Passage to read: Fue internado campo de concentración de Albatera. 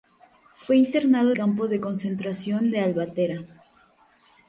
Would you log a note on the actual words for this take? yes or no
no